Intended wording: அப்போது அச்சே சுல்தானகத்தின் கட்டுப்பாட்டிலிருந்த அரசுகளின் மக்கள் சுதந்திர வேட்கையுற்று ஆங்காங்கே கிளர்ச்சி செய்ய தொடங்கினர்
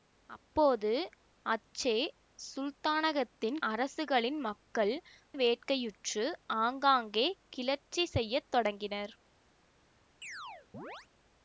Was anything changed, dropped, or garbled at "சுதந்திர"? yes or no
yes